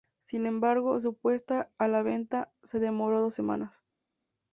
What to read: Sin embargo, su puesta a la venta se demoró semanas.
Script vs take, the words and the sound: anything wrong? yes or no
yes